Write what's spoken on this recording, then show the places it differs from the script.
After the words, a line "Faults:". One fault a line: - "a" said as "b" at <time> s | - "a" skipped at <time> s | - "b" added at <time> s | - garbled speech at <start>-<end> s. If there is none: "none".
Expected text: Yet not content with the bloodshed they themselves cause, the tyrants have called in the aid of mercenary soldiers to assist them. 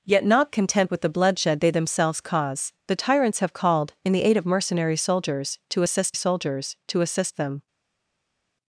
Yet not content with the bloodshed they themselves cause, the tyrants have called in the aid of mercenary soldiers to assist soldiers to assist them.
Faults:
- "soldiers to assist" added at 6.1 s